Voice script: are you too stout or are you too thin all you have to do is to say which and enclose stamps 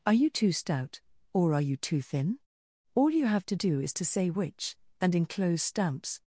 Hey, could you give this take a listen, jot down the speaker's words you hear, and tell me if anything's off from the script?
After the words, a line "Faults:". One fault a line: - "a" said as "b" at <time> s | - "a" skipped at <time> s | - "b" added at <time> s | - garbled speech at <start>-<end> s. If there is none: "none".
are you too stout or are you too thin all you have to do is to say which and enclose stamps
Faults:
none